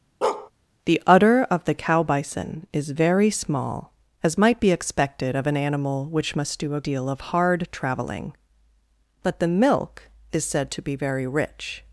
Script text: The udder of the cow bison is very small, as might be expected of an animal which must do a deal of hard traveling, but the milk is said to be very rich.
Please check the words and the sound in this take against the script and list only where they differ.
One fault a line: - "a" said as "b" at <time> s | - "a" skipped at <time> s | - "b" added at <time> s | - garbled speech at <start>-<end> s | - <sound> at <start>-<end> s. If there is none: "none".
- bark at 0.2-0.5 s